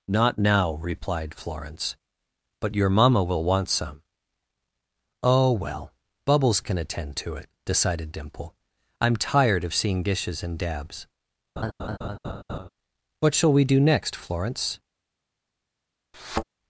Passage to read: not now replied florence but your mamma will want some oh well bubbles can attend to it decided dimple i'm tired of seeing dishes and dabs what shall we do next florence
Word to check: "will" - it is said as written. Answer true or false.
true